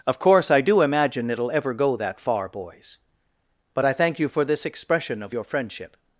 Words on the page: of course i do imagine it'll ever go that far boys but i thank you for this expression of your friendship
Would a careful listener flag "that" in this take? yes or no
no